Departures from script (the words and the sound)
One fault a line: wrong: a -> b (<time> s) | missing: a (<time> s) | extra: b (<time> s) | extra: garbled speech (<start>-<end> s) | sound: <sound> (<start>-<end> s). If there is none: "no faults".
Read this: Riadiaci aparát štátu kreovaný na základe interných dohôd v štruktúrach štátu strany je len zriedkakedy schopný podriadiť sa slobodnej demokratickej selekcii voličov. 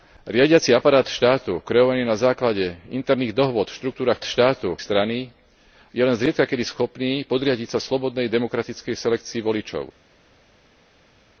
no faults